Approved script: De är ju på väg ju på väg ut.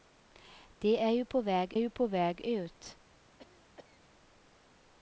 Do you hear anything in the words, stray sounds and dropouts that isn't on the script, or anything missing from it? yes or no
yes